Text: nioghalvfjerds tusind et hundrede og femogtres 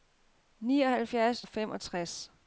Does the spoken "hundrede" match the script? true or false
false